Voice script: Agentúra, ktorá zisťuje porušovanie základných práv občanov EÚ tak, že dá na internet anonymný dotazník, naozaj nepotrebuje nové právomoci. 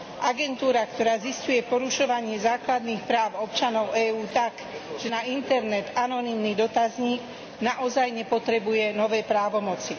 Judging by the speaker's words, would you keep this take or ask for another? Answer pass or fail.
fail